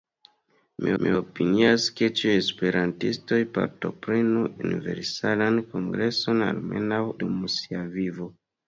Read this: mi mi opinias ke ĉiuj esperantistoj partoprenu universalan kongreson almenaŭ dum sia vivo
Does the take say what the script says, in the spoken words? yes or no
yes